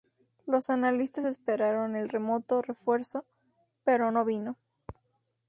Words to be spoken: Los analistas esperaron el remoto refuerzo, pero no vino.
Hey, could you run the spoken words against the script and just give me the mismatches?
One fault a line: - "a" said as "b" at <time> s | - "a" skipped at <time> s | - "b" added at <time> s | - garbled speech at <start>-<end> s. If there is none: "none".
none